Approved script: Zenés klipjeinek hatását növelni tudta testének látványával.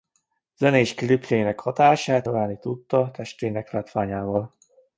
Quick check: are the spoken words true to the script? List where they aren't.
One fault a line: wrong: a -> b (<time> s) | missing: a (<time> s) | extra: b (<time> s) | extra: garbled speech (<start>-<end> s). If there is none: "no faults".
no faults